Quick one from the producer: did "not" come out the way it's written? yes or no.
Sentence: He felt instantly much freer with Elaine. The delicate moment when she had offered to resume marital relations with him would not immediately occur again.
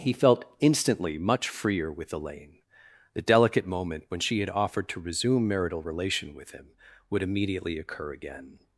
no